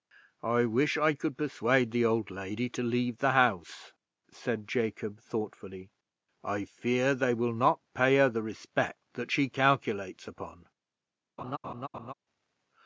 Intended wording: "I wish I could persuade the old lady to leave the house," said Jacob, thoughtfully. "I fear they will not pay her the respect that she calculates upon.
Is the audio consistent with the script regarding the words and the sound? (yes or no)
no